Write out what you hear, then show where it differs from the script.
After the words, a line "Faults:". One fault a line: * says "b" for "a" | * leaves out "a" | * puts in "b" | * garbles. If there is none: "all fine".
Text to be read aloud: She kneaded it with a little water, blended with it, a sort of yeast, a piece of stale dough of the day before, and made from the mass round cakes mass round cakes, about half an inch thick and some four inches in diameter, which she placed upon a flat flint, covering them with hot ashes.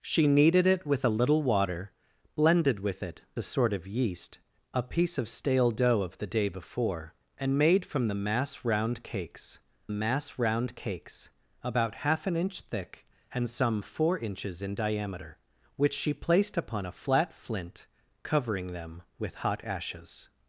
She kneaded it with a little water, blended with it, a sort of yeast, a piece of stale dough of the day before, and made from the mass round cakes mass round cakes, about half an inch thick and some four inches in diameter, which she placed upon a flat flint, covering them with hot ashes.
Faults:
all fine